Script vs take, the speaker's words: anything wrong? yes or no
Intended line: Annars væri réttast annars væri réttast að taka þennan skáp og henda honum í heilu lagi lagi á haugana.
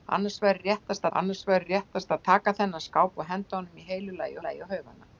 no